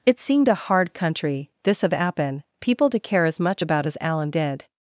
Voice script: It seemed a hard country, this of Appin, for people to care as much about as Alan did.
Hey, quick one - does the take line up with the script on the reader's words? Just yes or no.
no